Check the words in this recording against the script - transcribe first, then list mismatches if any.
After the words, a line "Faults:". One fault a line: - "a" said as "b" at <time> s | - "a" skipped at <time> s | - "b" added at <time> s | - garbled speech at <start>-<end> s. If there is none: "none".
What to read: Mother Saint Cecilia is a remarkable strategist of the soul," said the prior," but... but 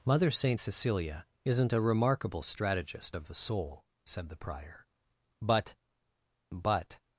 Mother Saint Cecilia isn't a remarkable strategist of the soul," said the prior," but... but
Faults:
- "is" said as "isn't" at 1.4 s